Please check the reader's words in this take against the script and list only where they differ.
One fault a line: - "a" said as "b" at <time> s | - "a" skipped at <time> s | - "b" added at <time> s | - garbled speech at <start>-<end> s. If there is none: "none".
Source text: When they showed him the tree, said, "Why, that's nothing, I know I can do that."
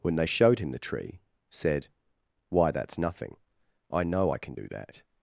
none